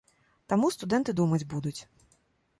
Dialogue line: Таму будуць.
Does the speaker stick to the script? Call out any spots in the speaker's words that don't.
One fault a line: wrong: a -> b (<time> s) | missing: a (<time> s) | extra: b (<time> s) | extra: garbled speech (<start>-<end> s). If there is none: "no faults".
extra: студэнты думаць (0.8 s)